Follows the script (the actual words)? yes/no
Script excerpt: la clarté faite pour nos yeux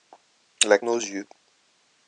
no